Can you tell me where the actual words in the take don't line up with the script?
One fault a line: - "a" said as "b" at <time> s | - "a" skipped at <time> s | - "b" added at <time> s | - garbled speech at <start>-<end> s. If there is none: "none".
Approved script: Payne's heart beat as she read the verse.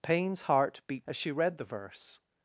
none